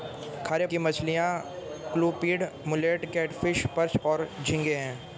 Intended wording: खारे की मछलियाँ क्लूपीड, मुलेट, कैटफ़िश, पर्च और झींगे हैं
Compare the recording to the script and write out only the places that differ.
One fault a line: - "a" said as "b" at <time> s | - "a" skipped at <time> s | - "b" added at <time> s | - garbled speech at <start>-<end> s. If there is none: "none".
none